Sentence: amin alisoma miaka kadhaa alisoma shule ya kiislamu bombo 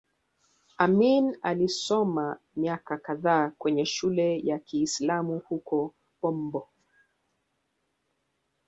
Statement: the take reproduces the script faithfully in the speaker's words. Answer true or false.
false